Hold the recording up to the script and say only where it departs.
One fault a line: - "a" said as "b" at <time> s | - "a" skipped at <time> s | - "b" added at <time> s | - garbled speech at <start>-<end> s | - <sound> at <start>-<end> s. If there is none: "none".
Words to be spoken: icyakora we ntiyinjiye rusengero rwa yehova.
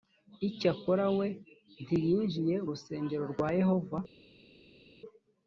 none